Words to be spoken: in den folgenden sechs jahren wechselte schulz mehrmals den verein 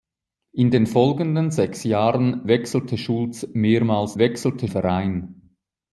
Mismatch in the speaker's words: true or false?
true